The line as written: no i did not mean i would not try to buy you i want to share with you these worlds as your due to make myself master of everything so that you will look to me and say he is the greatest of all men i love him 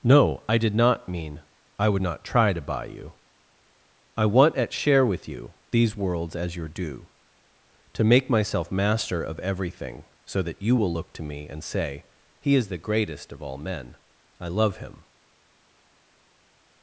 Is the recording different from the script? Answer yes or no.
yes